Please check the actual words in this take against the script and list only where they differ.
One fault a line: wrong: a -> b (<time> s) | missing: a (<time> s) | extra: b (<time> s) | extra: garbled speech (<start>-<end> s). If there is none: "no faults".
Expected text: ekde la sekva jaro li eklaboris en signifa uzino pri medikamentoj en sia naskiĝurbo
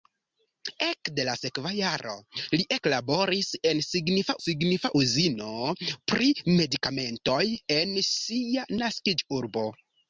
extra: signifa (4.4 s)